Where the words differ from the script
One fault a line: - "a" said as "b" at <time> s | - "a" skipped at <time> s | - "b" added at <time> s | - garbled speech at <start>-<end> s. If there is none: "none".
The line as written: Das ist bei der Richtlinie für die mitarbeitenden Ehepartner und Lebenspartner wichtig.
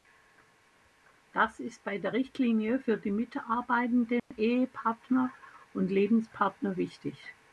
none